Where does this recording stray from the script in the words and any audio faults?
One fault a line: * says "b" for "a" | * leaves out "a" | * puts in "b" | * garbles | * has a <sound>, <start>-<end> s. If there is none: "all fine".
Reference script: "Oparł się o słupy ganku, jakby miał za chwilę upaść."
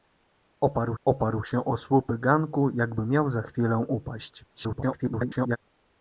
* puts in "oparł"
* garbles